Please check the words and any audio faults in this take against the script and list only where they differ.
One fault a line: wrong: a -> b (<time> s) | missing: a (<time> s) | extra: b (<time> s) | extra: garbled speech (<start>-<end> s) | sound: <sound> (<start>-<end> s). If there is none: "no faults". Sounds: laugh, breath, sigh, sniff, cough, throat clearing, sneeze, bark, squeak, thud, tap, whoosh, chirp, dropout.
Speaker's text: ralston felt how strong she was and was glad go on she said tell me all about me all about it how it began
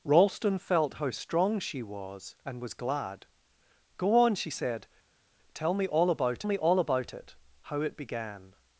no faults